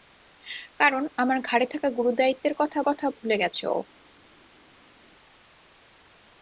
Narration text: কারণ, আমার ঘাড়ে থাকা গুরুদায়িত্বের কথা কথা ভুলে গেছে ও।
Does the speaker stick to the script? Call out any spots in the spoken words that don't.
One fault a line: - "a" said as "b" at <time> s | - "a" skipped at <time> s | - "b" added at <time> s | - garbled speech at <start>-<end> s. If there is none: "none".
none